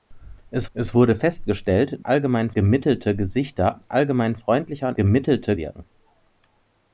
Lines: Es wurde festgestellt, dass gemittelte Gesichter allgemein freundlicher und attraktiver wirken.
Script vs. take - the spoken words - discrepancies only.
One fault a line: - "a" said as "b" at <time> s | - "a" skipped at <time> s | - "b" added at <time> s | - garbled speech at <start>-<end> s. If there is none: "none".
- "es" added at 0.7 s
- "dass" said as "allgemein" at 2.0 s
- "attraktiver" said as "gemittelte" at 4.9 s